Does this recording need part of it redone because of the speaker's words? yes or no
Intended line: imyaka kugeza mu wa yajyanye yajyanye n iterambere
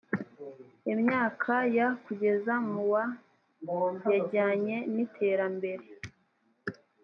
yes